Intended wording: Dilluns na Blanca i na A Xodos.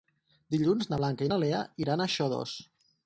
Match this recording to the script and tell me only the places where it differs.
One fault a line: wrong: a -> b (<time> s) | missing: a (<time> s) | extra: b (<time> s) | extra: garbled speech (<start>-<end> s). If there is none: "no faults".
extra: Lea iran (1.4 s)